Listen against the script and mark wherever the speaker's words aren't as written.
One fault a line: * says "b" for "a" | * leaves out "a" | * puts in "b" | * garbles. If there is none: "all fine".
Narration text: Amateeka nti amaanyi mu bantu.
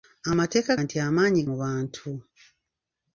all fine